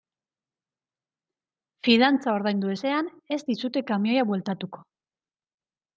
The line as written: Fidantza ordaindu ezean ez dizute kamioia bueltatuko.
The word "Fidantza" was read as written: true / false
true